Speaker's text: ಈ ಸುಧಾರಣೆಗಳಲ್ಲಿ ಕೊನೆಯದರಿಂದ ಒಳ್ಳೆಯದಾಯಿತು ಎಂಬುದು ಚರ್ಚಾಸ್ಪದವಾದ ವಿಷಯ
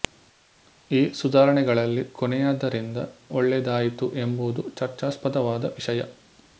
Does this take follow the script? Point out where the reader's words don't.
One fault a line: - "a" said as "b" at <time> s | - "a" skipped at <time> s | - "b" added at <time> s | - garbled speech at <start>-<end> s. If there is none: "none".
none